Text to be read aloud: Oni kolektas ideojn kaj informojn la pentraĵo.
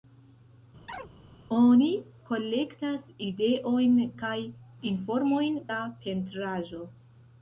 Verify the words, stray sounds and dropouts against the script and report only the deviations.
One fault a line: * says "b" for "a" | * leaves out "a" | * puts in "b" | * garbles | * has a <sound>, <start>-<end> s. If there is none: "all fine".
* has a chirp, 0.9-1.1 s